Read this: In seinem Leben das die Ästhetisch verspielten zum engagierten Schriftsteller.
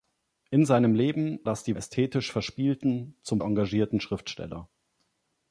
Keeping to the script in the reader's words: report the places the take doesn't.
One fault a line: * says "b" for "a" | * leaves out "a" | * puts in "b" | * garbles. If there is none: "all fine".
all fine